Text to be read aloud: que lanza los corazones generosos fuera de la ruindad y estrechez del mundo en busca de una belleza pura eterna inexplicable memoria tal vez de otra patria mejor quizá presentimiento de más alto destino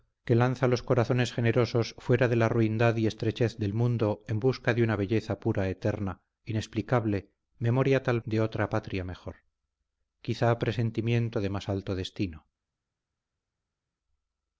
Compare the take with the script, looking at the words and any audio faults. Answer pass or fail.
fail